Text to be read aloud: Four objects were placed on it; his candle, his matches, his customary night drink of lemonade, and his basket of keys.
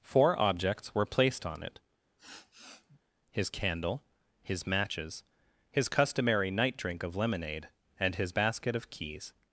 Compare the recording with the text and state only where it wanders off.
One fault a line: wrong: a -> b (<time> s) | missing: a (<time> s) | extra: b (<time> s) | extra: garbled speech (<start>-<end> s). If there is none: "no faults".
no faults